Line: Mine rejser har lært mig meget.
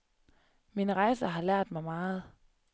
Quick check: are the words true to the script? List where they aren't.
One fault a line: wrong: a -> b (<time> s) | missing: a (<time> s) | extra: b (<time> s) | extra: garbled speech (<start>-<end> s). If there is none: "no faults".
no faults